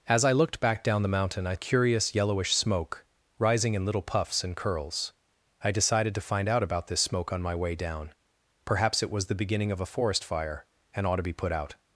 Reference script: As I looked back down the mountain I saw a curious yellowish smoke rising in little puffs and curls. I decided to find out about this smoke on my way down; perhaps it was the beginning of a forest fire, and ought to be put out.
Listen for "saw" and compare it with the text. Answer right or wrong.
wrong